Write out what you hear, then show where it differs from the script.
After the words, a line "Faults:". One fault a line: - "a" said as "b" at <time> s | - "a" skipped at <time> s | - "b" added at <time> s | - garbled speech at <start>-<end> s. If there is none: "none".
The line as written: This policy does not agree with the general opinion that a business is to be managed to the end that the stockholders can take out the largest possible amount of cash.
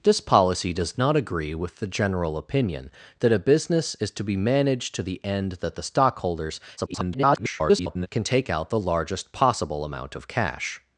This policy does not agree with the general opinion that a business is to be managed to the end that the stockholders [garbled] can take out the largest possible amount of cash.
Faults:
- garbled speech at 6.8-8.1 s